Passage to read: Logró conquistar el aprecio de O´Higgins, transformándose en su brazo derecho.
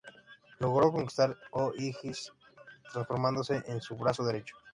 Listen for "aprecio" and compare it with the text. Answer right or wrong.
wrong